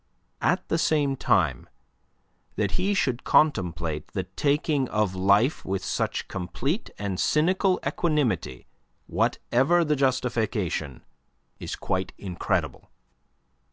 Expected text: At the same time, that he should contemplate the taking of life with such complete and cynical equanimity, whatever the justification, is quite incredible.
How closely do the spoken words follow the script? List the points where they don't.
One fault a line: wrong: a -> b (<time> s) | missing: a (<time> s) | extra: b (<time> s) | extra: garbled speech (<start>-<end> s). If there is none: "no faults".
no faults